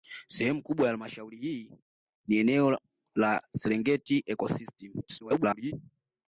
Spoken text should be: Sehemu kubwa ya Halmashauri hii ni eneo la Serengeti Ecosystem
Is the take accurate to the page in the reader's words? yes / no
no